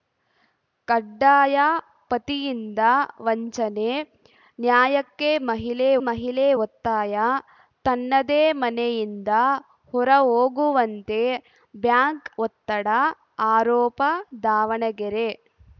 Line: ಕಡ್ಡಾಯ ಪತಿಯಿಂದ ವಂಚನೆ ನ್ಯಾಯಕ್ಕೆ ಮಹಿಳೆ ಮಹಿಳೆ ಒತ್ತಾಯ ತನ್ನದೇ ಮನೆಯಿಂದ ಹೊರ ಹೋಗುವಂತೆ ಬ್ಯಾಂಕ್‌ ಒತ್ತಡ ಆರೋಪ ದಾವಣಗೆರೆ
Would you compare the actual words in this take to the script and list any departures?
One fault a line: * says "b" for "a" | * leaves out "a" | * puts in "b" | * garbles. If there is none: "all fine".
all fine